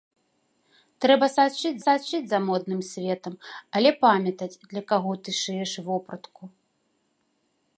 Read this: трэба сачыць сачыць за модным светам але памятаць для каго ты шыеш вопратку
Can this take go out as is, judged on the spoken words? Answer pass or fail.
pass